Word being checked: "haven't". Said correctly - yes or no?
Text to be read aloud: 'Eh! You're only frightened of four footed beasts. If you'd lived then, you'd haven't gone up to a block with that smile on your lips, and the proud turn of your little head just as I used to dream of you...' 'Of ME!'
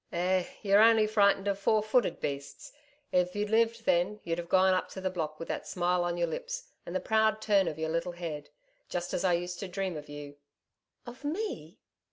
no